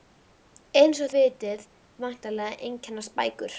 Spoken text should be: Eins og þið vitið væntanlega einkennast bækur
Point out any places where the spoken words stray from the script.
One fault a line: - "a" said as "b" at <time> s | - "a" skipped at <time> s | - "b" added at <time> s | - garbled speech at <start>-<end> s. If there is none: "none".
- "þið" skipped at 1.1 s